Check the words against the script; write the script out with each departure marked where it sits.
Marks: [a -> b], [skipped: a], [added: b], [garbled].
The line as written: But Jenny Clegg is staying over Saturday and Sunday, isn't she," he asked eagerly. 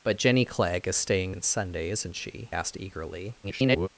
But Jenny Clegg is staying [skipped: over Saturday] and Sunday, isn't she," [skipped: he] asked eagerly. [garbled]